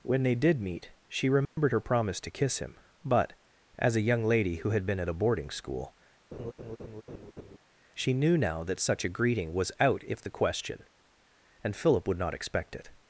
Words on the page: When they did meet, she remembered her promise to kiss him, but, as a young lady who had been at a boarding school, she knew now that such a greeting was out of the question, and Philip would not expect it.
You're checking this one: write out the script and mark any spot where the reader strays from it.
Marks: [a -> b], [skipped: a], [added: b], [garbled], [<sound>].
When they did meet, she remembered [dropout] her promise to kiss him, but, as a young lady who had been at a boarding school, [laugh] she knew now that such a greeting was out [of -> if] the question, and Philip would not expect it.